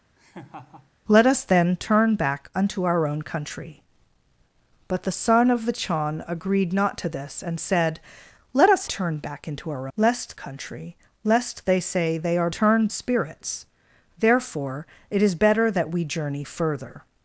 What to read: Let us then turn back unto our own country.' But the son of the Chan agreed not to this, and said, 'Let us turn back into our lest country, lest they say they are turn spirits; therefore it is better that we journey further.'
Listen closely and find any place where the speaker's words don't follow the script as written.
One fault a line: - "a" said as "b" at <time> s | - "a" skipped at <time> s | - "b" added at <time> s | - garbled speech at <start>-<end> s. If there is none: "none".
none